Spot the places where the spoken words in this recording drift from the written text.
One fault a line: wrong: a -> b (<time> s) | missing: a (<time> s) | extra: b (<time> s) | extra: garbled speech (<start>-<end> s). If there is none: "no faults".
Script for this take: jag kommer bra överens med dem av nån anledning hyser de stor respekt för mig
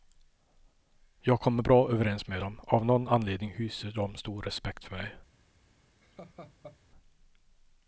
no faults